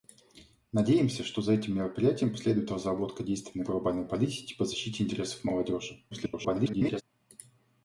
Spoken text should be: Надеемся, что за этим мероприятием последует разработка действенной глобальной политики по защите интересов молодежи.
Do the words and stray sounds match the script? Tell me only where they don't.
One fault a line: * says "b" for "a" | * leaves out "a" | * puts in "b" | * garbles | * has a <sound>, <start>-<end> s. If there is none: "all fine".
* garbles